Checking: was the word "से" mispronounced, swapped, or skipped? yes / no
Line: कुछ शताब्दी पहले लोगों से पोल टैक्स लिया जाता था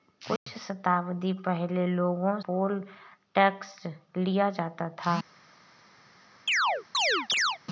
yes